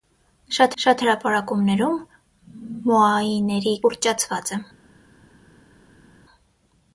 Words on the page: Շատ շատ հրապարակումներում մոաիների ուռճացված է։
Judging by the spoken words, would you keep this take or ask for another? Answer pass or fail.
pass